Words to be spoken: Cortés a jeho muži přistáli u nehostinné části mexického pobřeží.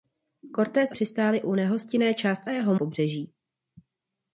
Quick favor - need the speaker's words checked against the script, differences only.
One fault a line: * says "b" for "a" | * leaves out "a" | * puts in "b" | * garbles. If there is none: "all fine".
* leaves out "jeho muži"
* says "jeho" for "mexického"